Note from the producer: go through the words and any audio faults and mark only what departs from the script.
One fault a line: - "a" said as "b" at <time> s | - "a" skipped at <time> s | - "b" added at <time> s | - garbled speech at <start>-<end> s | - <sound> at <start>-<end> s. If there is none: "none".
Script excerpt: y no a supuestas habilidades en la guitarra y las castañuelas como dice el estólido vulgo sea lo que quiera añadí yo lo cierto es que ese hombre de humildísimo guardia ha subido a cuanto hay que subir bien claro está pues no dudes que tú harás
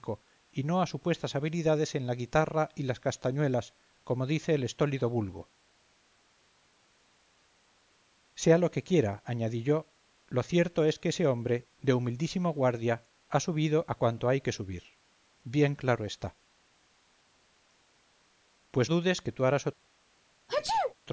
- "no" skipped at 18.9 s
- sneeze at 20.5-20.9 s